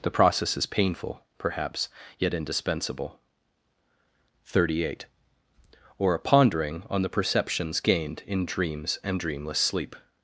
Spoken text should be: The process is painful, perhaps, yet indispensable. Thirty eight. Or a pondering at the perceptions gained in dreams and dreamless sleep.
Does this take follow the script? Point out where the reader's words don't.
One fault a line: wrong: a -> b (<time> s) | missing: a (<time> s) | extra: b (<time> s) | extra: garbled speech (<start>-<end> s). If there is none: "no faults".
wrong: at -> on (6.9 s)